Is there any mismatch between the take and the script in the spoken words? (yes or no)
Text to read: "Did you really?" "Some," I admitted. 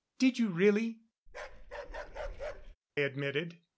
yes